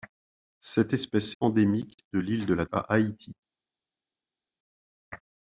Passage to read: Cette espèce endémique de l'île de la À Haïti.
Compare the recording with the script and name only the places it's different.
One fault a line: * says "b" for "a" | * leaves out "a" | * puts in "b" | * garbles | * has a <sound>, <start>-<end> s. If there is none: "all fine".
all fine